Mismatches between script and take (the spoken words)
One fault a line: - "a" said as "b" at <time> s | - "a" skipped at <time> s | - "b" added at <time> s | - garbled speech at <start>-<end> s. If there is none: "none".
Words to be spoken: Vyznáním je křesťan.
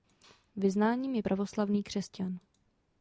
- "pravoslavný" added at 1.2 s